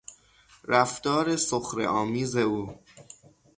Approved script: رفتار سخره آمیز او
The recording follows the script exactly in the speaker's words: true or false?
true